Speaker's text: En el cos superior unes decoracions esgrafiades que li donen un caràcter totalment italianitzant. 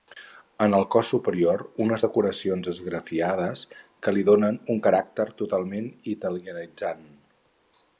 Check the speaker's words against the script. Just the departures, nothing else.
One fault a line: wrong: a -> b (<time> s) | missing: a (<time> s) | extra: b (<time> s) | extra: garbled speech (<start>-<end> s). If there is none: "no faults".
no faults